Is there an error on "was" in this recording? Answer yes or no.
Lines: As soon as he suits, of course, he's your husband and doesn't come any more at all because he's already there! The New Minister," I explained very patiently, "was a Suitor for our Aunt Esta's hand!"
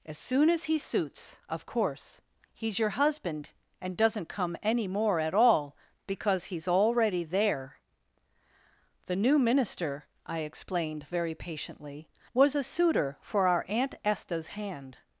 no